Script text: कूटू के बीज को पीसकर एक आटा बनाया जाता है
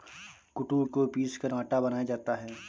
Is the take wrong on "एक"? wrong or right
wrong